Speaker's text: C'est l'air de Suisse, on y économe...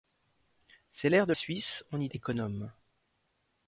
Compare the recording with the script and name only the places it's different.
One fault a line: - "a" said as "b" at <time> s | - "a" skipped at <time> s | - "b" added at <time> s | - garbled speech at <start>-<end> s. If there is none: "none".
none